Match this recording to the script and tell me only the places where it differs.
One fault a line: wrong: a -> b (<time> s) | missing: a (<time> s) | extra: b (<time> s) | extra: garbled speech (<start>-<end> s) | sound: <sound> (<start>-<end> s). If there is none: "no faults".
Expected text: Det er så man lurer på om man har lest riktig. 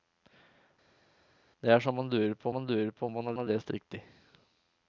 extra: man lurer på (2.5 s)
extra: har (3.4 s)